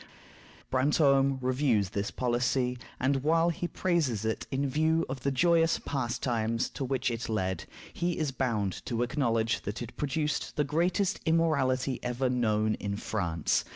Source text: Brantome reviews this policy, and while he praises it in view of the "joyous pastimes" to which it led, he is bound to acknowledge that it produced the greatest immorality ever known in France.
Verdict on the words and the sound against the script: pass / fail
pass